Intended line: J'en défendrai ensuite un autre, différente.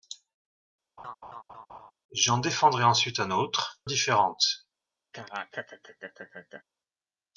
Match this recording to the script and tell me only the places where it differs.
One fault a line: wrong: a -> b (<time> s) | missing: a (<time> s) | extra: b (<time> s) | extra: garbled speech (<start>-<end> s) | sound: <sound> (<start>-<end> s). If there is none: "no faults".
sound: laugh (1.0-1.9 s)
sound: laugh (5.1-6.6 s)